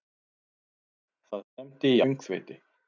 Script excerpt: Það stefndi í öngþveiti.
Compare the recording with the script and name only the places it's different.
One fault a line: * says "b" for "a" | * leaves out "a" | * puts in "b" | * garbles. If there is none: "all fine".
all fine